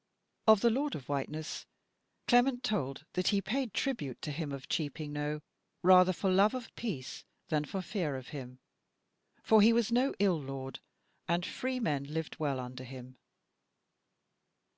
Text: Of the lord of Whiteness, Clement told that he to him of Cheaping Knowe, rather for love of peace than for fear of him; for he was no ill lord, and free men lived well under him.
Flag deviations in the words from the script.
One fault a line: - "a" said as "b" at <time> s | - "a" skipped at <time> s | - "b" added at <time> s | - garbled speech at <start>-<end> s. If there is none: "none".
- "paid tribute" added at 3.4 s